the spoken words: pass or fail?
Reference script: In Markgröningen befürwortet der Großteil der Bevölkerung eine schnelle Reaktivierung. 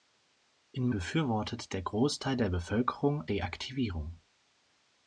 fail